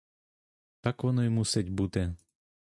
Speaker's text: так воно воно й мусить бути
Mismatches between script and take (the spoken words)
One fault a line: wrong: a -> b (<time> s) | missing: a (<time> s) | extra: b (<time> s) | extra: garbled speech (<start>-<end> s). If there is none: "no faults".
missing: воно (1.2 s)